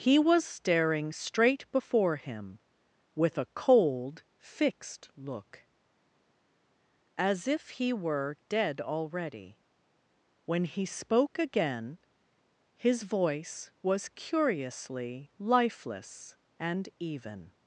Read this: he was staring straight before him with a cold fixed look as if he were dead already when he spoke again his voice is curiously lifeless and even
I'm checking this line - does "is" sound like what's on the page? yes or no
no